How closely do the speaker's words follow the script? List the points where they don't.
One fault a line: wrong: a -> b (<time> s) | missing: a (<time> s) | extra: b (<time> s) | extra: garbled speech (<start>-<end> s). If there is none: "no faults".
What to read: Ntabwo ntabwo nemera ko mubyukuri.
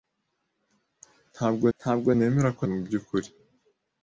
no faults